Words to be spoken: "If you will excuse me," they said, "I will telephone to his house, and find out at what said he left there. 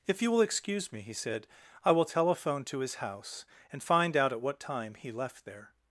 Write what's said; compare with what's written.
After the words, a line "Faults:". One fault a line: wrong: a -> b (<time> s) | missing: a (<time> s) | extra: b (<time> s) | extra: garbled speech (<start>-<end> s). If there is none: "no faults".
"If you will excuse me," he said, "I will telephone to his house, and find out at what time he left there.
Faults:
wrong: they -> he (1.0 s)
wrong: said -> time (4.6 s)